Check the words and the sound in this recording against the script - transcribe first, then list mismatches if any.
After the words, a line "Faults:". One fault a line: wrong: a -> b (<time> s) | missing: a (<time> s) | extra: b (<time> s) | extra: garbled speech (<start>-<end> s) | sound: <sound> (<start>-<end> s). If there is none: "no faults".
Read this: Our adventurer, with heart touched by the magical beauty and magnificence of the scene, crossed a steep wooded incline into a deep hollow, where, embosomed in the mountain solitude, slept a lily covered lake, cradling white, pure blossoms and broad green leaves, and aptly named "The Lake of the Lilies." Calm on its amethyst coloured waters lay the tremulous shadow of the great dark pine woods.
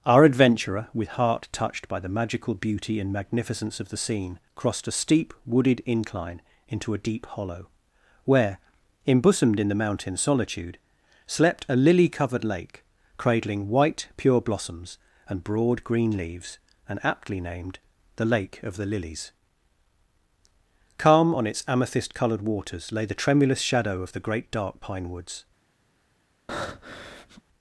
Our adventurer, with heart touched by the magical beauty and magnificence of the scene, crossed a steep wooded incline into a deep hollow, where, embosomed in the mountain solitude, slept a lily covered lake, cradling white, pure blossoms and broad green leaves, and aptly named "The Lake of the Lilies." Calm on its amethyst coloured waters lay the tremulous shadow of the great dark pine woods.
Faults:
sound: breath (26.5-27.4 s)